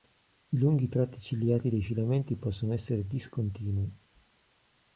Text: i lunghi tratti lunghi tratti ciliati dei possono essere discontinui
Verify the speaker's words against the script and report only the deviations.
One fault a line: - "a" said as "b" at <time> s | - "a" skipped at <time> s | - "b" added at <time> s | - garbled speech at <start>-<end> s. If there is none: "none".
- "lunghi tratti" skipped at 1.2 s
- "filamenti" added at 1.8 s